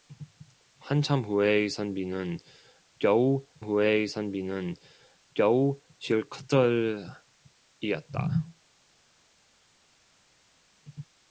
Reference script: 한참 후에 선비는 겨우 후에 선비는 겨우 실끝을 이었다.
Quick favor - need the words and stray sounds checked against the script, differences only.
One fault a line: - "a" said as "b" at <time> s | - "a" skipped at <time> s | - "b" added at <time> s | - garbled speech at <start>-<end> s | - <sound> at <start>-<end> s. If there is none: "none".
none